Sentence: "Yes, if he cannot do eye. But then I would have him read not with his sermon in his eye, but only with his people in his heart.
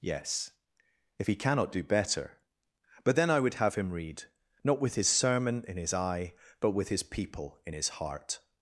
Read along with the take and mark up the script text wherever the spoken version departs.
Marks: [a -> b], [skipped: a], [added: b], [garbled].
"Yes, if he cannot do [eye. -> better] But then I would have him read not with his sermon in his eye, but [skipped: only] with his people in his heart.